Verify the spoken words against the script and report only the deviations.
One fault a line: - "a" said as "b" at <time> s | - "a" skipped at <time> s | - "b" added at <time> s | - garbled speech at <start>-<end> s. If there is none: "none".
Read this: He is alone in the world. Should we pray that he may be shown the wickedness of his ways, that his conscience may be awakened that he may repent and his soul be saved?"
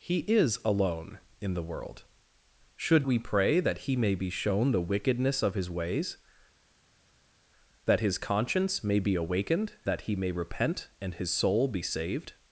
none